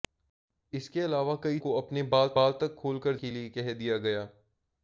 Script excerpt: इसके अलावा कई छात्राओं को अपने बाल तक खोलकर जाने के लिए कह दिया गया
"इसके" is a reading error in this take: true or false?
false